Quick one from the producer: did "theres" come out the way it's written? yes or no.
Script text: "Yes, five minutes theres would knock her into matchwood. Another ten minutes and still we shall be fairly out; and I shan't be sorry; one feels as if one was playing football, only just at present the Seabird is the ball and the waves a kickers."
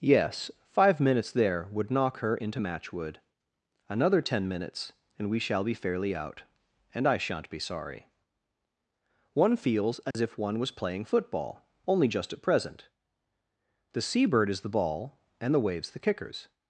no